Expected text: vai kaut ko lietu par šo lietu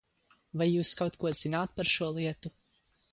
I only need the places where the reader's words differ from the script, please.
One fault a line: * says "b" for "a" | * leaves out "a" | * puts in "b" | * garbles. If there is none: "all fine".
* puts in "jūs"
* says "zināt" for "lietu"